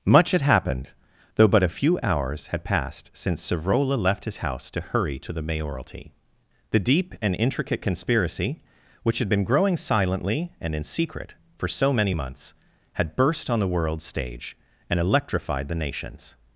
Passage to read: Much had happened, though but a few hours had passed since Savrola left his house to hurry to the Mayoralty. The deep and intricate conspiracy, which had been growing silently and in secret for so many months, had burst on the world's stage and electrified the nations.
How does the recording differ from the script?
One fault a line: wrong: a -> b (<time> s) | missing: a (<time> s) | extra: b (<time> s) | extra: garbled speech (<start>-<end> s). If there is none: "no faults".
no faults